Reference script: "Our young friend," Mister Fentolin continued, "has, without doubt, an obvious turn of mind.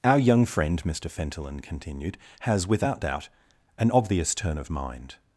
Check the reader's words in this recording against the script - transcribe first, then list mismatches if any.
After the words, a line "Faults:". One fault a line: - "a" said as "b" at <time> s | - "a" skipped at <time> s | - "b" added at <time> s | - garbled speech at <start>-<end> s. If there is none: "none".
"Our young friend," Mister Fentolin continued, "has, without doubt, an obvious turn of mind.
Faults:
none